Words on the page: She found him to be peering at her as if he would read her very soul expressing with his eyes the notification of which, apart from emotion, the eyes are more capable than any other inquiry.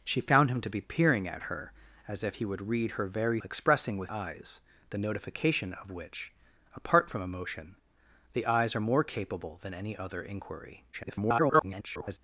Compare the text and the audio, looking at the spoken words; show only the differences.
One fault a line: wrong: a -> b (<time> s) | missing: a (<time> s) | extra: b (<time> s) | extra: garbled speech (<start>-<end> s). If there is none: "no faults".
missing: soul (3.4 s)
missing: his (4.1 s)
extra: garbled speech (10.9-12.2 s)